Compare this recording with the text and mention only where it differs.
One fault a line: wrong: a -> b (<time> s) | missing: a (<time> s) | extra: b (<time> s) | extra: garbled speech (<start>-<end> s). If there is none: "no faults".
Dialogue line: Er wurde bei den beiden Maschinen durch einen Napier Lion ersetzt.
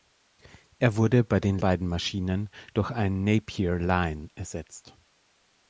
no faults